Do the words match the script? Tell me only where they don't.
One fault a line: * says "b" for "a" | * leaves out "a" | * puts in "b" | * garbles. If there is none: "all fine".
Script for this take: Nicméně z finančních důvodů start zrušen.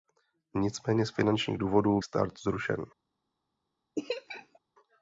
all fine